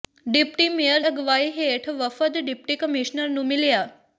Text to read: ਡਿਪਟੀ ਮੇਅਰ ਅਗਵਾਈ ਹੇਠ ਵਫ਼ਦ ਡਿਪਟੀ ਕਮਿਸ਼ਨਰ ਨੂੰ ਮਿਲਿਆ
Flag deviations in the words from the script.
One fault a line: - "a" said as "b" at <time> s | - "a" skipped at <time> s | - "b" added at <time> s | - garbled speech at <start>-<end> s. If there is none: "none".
none